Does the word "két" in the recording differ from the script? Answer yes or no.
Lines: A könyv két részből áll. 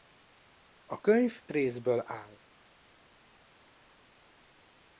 yes